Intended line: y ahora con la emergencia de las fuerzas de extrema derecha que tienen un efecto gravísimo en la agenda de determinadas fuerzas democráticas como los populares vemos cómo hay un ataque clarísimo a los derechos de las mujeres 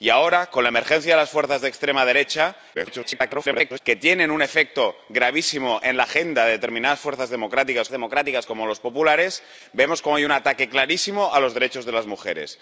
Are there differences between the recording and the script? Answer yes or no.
yes